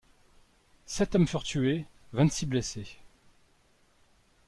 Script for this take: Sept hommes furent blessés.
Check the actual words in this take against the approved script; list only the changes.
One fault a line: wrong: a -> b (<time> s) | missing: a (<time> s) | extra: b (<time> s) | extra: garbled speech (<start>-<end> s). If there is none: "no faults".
extra: tués vingt six (1.4 s)